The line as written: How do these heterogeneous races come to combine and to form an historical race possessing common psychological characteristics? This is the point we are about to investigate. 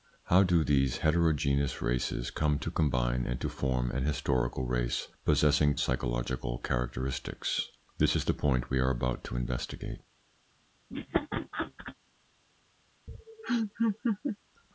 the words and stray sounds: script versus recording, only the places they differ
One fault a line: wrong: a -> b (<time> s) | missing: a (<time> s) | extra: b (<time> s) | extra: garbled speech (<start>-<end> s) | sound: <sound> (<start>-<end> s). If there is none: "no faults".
missing: common (5.8 s)
sound: laugh (10.9-12.0 s)
sound: laugh (13.1-14.4 s)